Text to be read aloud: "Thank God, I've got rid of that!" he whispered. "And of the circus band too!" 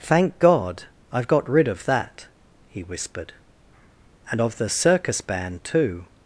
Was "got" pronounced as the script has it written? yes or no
yes